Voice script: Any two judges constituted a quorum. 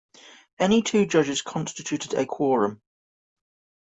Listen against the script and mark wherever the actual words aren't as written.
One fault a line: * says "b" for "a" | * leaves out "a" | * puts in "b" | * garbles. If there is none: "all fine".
all fine